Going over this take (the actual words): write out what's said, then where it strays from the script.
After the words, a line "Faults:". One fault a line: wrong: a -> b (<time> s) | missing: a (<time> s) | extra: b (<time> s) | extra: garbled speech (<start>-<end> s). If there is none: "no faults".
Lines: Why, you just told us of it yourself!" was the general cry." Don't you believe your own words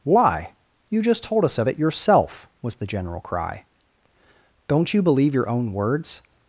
Why, you just told us of it yourself!" was the general cry." Don't you believe your own words
Faults:
no faults